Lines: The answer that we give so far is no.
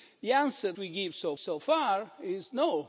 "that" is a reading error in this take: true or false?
true